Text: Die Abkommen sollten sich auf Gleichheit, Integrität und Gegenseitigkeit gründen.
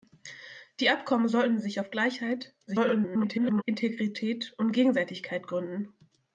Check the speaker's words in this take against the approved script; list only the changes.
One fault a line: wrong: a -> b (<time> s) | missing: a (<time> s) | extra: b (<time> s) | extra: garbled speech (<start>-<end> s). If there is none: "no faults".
extra: garbled speech (2.7-3.6 s)